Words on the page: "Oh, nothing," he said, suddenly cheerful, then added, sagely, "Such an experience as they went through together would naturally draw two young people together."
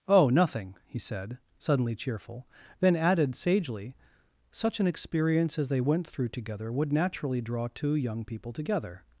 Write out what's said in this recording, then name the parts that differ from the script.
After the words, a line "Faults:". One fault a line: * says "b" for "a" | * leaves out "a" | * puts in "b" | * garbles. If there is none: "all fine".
"Oh, nothing," he said, suddenly cheerful, then added, sagely, "Such an experience as they went through together would naturally draw two young people together."
Faults:
all fine